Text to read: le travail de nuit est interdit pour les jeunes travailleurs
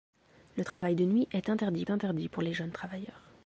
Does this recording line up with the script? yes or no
no